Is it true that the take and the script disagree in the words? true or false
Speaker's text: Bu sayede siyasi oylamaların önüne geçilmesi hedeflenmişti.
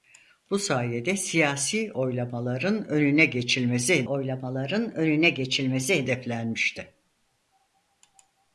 true